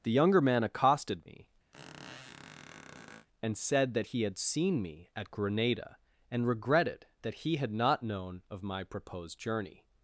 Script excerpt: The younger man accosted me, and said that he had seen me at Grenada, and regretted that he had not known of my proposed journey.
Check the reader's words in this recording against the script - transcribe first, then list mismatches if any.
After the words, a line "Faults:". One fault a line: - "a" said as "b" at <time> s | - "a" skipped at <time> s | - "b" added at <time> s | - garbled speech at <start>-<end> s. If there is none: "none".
The younger man accosted me, and said that he had seen me at Grenada, and regretted that he had not known of my proposed journey.
Faults:
none